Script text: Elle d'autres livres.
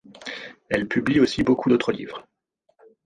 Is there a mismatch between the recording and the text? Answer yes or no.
yes